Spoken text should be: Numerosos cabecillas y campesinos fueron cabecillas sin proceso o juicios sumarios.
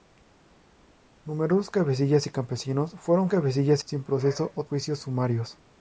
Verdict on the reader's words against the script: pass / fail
pass